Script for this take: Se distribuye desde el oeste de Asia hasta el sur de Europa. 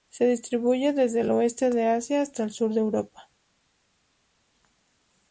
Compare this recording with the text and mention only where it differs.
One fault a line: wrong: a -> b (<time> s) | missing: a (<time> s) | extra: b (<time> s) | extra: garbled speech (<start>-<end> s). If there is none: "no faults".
no faults